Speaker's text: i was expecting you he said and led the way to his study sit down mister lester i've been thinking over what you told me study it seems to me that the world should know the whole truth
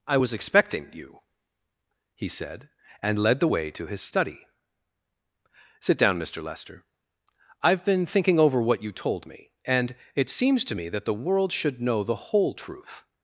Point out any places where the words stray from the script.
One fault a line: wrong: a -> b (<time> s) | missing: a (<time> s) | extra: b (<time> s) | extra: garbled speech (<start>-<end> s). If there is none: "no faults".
wrong: study -> and (9.6 s)